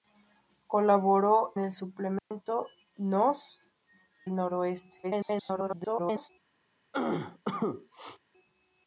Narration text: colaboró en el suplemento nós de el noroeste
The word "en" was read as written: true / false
false